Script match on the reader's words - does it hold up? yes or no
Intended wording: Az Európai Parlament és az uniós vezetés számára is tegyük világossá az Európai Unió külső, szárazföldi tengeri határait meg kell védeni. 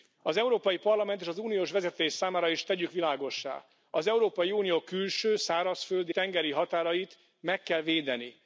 yes